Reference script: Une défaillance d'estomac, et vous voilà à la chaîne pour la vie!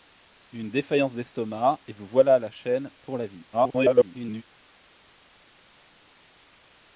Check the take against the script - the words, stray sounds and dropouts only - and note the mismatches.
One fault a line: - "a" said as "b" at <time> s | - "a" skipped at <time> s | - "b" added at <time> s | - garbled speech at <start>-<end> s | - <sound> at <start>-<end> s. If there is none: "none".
- garbled speech at 3.5-4.4 s